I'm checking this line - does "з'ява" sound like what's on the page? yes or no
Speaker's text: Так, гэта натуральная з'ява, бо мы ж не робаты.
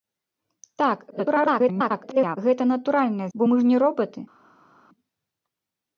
no